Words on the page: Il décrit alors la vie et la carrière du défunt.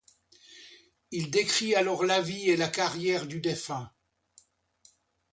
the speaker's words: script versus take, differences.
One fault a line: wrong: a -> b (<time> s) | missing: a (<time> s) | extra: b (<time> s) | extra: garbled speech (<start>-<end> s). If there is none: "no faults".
no faults